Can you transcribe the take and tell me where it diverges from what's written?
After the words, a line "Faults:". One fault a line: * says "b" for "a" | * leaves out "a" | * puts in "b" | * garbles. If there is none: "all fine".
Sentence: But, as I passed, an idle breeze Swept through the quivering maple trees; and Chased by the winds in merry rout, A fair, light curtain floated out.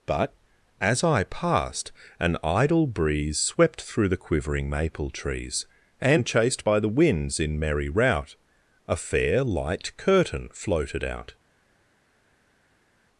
But, as I passed, an idle breeze Swept through the quivering maple trees; and Chased by the winds in merry rout, A fair, light curtain floated out.
Faults:
all fine